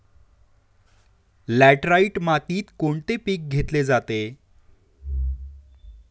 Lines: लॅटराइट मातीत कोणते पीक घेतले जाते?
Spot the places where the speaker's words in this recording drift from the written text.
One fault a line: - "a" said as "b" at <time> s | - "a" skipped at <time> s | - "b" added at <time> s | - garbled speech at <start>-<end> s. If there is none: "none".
none